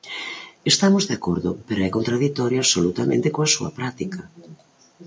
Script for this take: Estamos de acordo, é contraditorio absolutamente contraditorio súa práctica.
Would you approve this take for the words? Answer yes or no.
no